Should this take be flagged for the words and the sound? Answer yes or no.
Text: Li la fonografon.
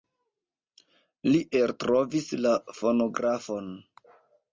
yes